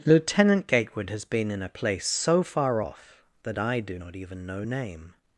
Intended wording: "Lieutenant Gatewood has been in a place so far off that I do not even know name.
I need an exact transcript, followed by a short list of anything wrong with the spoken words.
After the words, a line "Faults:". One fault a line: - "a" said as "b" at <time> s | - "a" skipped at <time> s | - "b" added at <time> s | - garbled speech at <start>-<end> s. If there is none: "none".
"Lieutenant Gatewood has been in a place so far off that I do not even know name.
Faults:
none